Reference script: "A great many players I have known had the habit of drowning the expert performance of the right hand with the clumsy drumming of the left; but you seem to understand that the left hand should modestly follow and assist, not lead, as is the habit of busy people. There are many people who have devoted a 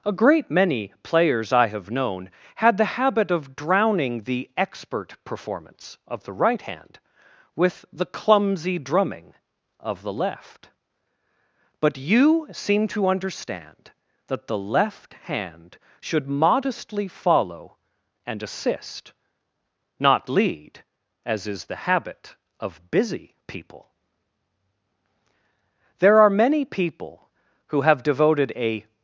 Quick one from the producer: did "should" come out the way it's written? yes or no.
yes